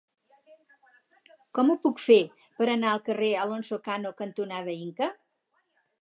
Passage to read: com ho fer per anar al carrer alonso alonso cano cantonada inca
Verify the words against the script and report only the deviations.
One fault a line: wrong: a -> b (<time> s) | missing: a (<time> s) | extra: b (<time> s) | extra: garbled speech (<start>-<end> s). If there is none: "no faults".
extra: puc (1.8 s)
missing: alonso (3.8 s)